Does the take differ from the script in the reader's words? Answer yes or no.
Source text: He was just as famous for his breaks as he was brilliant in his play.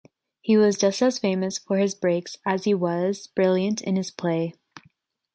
no